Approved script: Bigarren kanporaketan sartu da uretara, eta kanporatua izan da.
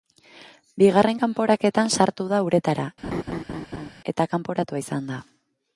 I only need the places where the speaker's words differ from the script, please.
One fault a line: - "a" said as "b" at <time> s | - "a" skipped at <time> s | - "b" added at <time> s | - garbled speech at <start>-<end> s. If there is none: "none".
none